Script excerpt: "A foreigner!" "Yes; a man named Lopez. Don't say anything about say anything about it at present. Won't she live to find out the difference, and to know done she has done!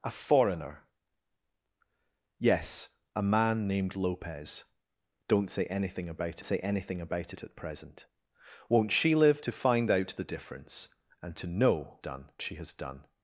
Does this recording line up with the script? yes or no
yes